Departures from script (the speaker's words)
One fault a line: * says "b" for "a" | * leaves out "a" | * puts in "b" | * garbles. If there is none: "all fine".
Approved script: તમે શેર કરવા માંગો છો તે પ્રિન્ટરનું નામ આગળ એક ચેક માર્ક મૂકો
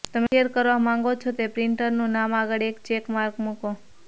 all fine